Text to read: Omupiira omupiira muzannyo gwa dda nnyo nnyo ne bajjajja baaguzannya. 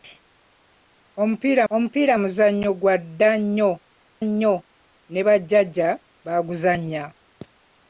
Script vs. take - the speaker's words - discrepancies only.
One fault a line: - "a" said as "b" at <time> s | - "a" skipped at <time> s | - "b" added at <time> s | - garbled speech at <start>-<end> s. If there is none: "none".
none